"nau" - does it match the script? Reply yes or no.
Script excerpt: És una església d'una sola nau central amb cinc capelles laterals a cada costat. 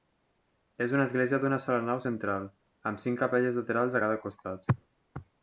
yes